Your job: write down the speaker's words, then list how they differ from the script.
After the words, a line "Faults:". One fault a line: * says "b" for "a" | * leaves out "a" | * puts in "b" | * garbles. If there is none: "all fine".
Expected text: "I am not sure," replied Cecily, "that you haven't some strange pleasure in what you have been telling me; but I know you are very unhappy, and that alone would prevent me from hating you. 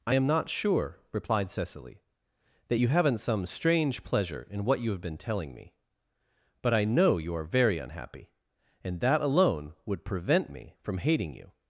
"I am not sure," replied Cecily, "that you haven't some strange pleasure in what you have been telling me; but I know you are very unhappy, and that alone would prevent me from hating you.
Faults:
all fine